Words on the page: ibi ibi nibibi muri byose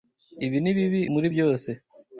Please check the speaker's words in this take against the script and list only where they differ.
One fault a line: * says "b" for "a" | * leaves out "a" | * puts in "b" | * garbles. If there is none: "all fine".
* leaves out "ibi"